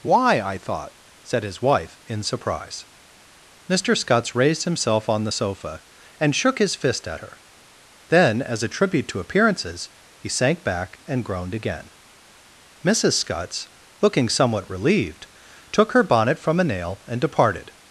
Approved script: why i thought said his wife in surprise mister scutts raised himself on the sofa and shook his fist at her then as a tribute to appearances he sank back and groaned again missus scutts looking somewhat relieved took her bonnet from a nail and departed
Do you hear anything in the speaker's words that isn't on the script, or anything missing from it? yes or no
no